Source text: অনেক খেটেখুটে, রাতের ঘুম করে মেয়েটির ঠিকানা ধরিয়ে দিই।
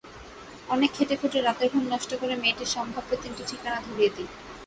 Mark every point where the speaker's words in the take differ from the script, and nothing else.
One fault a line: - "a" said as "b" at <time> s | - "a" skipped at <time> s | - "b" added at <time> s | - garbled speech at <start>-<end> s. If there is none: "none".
- "নষ্ট" added at 1.9 s
- "সম্ভাব্য তিনটি" added at 2.8 s